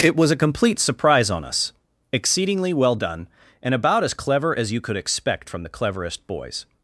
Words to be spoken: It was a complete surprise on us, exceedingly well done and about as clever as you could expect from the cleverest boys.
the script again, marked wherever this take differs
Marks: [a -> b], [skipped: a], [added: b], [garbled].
It was a complete surprise on us, exceedingly well done and about as clever as you could expect from the cleverest boys.